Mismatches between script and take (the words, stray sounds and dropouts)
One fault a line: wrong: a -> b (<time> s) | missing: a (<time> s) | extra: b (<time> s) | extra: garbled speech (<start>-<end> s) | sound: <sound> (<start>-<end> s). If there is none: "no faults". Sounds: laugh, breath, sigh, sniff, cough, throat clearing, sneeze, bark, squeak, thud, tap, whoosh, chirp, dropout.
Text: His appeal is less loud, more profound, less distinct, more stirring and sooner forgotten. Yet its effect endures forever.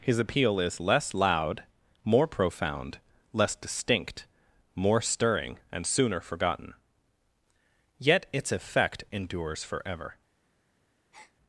sound: breath (11.1-11.3 s)